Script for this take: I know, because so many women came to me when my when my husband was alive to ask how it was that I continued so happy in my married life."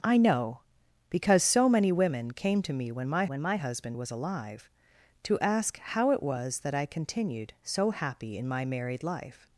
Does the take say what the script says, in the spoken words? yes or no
yes